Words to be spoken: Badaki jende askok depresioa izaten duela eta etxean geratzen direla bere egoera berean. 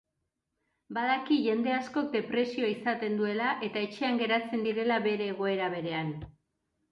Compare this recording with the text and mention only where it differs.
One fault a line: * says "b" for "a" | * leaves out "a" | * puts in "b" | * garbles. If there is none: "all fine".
all fine